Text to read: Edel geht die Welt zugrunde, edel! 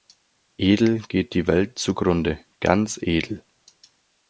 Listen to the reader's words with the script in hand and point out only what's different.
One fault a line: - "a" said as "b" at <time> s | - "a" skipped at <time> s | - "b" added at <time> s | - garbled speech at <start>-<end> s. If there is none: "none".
- "ganz" added at 2.6 s